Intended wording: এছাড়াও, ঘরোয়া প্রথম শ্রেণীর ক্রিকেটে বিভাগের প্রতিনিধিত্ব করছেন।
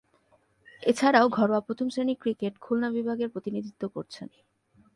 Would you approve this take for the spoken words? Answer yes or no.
no